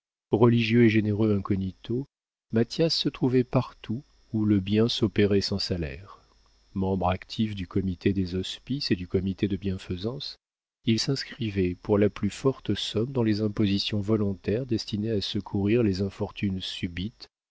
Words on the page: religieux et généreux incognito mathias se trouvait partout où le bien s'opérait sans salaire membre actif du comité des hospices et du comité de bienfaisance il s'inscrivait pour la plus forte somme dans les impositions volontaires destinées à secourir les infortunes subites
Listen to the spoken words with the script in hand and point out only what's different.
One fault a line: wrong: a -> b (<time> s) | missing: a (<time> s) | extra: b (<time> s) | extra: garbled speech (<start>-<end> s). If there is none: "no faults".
no faults